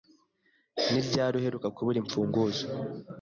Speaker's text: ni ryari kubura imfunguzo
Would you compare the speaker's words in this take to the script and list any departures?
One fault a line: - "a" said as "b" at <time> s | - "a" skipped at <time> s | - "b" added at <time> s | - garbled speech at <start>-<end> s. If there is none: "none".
- "uheruka" added at 1.4 s